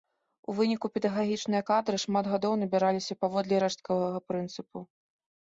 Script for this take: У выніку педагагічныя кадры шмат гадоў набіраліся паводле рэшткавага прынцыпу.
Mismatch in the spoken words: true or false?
false